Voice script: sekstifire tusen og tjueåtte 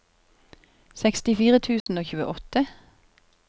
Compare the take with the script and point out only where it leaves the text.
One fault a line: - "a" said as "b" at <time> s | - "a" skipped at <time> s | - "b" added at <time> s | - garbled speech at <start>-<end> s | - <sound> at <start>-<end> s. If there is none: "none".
- dropout at 1.8-1.9 s